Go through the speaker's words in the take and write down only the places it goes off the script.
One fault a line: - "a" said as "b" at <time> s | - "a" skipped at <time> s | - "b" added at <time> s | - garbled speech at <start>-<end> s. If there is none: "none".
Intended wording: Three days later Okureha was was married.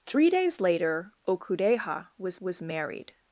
none